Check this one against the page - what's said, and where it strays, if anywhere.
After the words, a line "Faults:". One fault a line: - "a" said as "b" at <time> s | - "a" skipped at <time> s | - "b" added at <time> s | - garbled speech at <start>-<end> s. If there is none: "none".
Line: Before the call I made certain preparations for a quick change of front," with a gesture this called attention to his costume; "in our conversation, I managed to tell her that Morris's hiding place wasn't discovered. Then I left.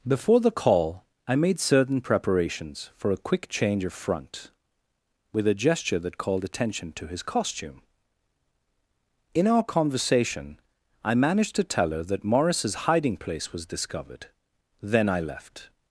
Before the call I made certain preparations for a quick change of front," with a gesture that called attention to his costume; "in our conversation, I managed to tell her that Morris's hiding place was discovered. Then I left.
Faults:
- "this" said as "that" at 6.0 s
- "wasn't" said as "was" at 13.5 s